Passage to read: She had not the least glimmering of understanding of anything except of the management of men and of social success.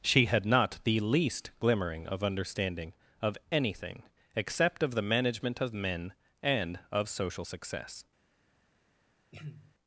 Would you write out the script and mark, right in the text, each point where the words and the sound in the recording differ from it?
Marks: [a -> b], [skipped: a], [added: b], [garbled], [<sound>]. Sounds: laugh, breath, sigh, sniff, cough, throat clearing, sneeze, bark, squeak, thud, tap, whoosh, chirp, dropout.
She had not the least glimmering of understanding of anything except of the management of men and of social success. [throat clearing]